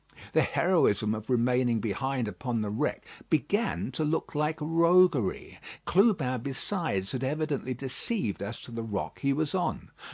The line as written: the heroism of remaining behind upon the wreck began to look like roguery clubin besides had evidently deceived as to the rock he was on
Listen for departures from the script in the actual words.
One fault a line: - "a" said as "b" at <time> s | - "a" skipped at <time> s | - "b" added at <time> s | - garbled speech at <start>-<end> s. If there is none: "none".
none